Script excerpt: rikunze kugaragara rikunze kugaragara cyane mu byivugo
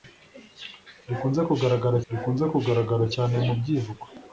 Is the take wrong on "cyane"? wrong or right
right